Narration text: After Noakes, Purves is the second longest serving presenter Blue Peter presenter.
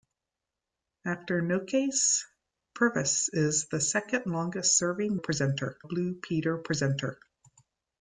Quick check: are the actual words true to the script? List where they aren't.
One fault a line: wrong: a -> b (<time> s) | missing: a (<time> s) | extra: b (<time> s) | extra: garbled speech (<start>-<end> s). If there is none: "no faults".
no faults